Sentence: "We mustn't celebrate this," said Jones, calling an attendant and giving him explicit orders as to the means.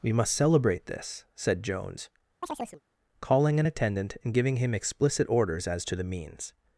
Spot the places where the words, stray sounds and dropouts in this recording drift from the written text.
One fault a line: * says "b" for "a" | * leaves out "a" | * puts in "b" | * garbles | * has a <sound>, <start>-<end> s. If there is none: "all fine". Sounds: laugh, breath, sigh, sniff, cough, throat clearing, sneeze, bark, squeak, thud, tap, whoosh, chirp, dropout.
* says "must" for "mustn't"
* has a chirp, 2.4-2.8 s